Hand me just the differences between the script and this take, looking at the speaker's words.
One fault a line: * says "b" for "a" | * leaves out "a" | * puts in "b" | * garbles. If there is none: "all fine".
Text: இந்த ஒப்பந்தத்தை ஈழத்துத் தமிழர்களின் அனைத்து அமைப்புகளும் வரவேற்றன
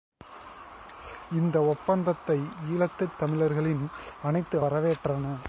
* leaves out "அமைப்புகளும்"